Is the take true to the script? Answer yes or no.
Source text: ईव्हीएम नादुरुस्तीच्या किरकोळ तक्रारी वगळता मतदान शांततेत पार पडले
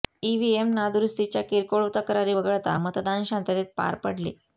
yes